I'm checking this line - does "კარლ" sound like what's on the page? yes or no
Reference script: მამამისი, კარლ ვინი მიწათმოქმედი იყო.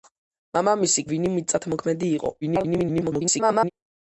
no